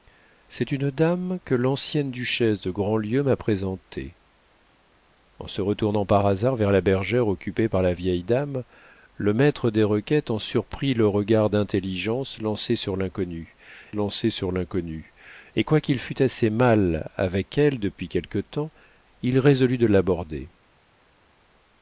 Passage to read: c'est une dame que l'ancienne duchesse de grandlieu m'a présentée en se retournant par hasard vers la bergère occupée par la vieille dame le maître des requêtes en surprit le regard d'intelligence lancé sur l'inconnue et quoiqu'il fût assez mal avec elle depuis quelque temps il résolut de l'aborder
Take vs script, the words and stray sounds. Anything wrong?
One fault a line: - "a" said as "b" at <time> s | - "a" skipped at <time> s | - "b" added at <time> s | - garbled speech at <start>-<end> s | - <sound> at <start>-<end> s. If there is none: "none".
- "lancé sur l'inconnue" added at 13.9 s